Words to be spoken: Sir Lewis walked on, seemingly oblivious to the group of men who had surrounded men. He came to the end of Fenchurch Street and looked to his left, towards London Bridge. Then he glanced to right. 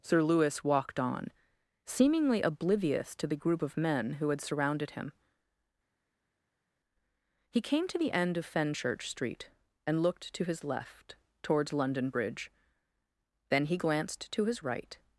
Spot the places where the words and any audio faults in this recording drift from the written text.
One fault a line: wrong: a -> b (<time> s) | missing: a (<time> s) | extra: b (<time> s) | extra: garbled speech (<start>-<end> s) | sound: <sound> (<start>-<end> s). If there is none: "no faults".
wrong: men -> him (4.9 s)
extra: his (14.4 s)